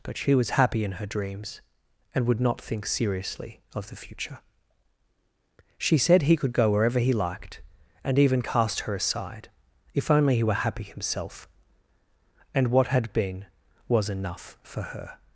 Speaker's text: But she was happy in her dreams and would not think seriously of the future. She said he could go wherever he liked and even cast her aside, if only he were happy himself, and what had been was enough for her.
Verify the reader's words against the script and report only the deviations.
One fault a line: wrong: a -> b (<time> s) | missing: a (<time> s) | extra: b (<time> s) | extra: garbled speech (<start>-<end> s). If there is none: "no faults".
no faults